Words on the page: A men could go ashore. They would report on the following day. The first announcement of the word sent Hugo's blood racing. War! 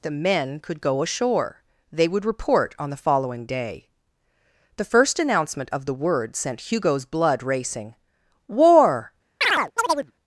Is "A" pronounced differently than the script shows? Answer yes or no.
yes